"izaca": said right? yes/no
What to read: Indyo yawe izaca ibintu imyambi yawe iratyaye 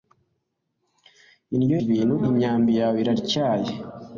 no